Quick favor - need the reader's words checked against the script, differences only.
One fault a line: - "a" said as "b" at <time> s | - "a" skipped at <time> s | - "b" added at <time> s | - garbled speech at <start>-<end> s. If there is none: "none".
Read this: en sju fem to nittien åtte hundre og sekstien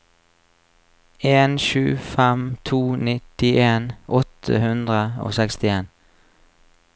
none